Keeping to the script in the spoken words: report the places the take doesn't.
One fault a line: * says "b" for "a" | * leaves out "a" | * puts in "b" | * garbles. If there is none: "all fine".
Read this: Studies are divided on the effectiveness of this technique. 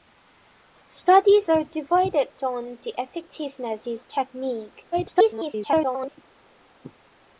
* leaves out "of"
* garbles